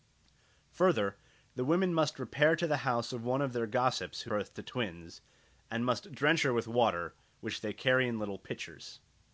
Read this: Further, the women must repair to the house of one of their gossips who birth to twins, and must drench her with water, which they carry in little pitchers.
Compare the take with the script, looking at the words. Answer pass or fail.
pass